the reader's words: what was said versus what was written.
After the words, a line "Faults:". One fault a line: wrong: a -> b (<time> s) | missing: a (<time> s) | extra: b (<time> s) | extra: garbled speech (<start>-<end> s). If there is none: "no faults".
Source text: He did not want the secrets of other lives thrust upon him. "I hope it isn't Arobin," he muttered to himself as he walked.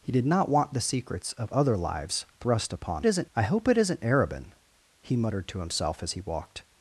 He did not want the secrets of other lives thrust upon isn't. "I hope it isn't Arobin," he muttered to himself as he walked.
Faults:
wrong: him -> isn't (3.0 s)